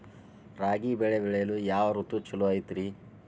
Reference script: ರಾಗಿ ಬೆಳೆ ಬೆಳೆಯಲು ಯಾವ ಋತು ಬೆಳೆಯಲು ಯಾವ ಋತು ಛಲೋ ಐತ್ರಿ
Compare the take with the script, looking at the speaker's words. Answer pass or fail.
fail